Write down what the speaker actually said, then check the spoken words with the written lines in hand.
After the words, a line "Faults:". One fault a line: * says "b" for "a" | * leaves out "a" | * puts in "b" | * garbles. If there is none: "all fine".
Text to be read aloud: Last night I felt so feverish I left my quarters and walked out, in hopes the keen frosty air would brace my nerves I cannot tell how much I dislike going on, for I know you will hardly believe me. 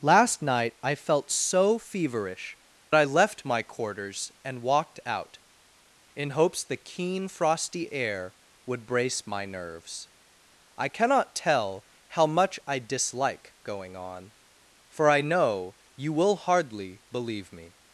Last night I felt so feverish I left my quarters and walked out, in hopes the keen frosty air would brace my nerves I cannot tell how much I dislike going on, for I know you will hardly believe me.
Faults:
all fine